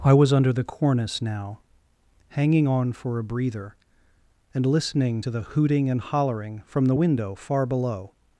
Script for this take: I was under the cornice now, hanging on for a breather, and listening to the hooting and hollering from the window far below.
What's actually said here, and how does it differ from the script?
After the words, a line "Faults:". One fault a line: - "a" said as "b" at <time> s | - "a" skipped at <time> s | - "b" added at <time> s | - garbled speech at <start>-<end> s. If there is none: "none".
I was under the cornice now, hanging on for a breather, and listening to the hooting and hollering from the window far below.
Faults:
none